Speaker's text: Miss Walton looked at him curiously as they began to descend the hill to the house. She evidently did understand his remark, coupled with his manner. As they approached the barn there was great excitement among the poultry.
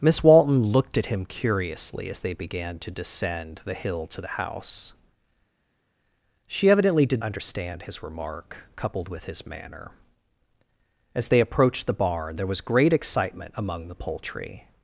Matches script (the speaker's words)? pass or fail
pass